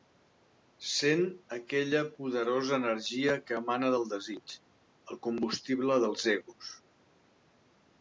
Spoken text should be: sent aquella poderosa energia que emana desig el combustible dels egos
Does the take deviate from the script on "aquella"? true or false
false